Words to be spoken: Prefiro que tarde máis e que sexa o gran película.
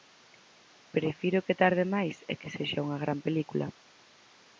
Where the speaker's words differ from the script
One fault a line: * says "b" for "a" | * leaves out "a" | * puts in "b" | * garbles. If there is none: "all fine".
* says "unha" for "o"